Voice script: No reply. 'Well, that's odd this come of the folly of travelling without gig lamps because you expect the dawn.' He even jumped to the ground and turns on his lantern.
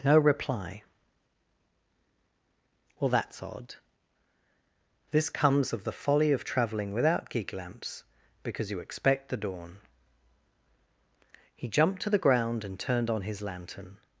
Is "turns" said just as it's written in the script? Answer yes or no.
no